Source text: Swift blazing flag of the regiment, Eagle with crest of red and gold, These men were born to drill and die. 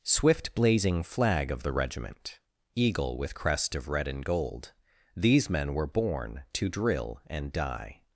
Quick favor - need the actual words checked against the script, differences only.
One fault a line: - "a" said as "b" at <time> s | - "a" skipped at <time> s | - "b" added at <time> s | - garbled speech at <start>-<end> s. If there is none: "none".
none